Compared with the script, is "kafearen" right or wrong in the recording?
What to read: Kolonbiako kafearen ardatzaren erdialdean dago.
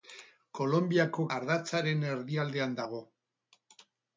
wrong